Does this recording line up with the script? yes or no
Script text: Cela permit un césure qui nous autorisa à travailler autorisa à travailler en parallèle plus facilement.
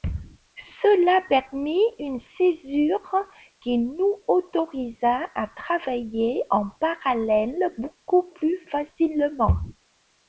no